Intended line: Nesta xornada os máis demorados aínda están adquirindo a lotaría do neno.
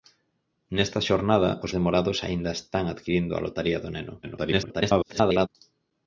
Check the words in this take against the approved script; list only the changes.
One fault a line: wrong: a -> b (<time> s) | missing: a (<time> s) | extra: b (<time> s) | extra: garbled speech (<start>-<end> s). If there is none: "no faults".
missing: máis (1.7 s)
extra: garbled speech (4.2-5.5 s)